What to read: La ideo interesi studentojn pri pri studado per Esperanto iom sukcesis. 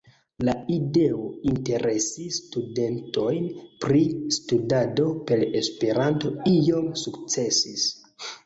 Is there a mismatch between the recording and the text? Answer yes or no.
yes